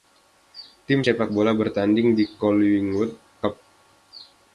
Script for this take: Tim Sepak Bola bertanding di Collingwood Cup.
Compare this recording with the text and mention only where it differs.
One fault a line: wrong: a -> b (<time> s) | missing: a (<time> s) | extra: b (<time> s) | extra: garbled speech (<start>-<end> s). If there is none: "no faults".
no faults